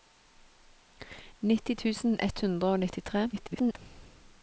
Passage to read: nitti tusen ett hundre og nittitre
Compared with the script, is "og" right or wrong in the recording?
right